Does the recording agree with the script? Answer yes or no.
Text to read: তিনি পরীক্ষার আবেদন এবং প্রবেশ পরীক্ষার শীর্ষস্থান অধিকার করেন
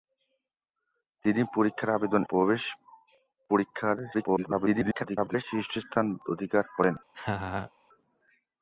no